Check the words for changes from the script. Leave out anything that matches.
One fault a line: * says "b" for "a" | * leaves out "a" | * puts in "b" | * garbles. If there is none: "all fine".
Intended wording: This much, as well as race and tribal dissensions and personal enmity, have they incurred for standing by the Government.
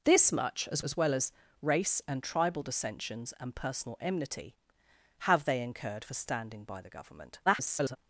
* puts in "as"
* garbles